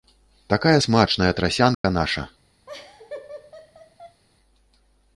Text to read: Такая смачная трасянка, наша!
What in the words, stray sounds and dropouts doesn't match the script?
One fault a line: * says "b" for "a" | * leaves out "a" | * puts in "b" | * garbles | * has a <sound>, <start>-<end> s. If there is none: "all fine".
* has a dropout, 1.7-1.8 s
* has a laugh, 2.7-4.2 s